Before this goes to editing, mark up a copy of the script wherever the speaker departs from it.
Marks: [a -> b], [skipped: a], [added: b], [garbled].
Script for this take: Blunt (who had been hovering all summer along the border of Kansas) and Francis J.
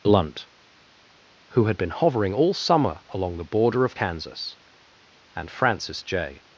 Blunt (who had been hovering all summer along the border of Kansas) and Francis J.